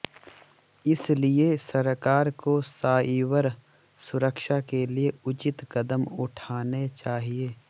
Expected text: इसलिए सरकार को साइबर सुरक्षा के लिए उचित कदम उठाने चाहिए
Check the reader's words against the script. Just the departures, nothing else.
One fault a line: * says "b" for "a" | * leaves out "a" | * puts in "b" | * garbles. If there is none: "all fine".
all fine